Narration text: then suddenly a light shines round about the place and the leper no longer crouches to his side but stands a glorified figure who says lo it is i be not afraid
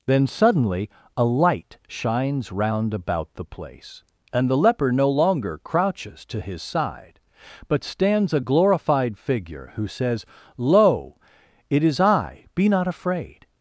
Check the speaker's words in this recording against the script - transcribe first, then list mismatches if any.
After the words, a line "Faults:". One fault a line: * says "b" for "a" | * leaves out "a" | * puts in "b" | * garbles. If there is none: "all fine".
then suddenly a light shines round about the place and the leper no longer crouches to his side but stands a glorified figure who says lo it is i be not afraid
Faults:
all fine